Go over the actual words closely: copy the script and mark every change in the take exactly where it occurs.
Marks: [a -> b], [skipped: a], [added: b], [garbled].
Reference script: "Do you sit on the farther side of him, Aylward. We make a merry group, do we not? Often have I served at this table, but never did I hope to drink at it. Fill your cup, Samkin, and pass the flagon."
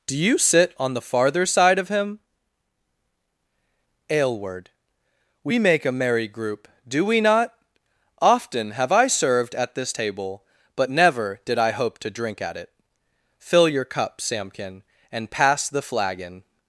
"Do you sit on the farther side of him, Aylward. We make a merry group, do we not? Often have I served at this table, but never did I hope to drink at it. Fill your cup, Samkin, and pass the flagon."